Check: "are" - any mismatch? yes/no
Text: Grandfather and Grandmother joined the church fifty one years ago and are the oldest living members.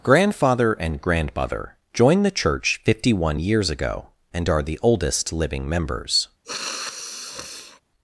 no